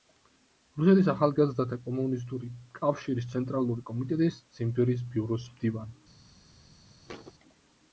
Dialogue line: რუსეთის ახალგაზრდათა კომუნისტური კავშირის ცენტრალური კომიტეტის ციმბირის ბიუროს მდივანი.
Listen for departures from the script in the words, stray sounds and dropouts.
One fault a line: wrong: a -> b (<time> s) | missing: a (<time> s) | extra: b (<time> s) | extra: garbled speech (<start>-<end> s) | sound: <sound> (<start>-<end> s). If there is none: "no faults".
sound: thud (7.1-7.3 s)